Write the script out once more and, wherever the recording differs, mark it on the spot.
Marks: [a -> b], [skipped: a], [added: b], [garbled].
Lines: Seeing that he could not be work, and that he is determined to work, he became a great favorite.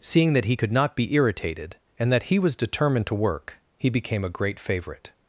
Seeing that he could not be [work, -> irritated] and that he [is -> was] determined to work, he became a great favorite.